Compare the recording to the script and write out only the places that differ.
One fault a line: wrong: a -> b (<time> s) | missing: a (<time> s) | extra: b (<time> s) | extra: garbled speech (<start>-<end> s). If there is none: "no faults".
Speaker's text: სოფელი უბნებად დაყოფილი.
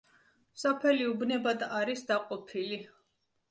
extra: არის (1.8 s)